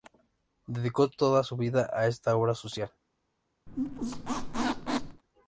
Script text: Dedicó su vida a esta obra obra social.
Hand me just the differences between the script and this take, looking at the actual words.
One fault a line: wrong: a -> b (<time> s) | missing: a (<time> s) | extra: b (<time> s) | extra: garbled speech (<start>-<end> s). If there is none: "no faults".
extra: toda (1.1 s)
missing: obra (2.5 s)